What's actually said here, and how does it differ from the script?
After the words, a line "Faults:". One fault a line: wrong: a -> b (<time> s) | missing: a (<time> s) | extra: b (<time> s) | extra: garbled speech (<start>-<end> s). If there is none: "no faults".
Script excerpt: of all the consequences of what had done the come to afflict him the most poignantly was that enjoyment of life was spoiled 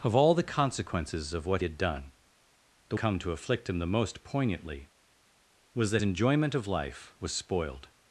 of all the consequences of what had done the come to afflict him the most poignantly was that enjoyment of life was spoiled
Faults:
no faults